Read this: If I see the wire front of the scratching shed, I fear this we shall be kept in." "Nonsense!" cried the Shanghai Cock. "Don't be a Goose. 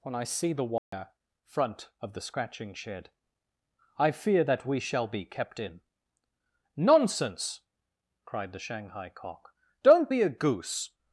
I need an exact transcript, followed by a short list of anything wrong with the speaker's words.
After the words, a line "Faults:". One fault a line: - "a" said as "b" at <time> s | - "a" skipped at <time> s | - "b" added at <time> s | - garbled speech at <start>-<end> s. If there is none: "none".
When I see the wire front of the scratching shed, I fear that we shall be kept in." "Nonsense!" cried the Shanghai Cock. "Don't be a Goose.
Faults:
- "If" said as "When" at 0.0 s
- "this" said as "that" at 4.4 s